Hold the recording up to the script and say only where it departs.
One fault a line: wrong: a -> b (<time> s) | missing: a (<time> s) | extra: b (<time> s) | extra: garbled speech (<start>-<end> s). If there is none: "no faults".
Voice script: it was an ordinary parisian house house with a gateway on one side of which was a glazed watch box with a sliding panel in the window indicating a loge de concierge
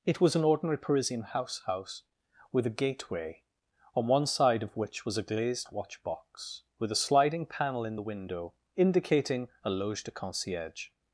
no faults